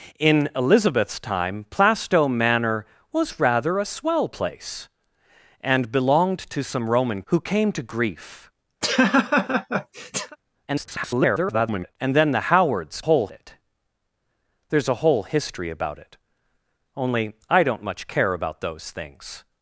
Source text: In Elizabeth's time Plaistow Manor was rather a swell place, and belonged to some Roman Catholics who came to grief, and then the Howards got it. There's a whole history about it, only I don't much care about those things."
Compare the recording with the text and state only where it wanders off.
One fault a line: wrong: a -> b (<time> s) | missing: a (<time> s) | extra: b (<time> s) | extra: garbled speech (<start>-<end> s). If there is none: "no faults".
missing: Catholics (7.2 s)
extra: garbled speech (10.7-12.0 s)
wrong: got -> whole (13.0 s)